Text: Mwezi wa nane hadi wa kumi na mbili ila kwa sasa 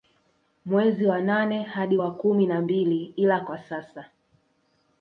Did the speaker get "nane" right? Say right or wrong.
right